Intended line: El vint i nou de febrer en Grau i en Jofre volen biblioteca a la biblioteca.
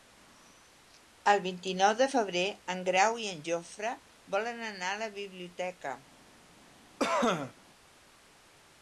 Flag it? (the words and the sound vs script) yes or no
yes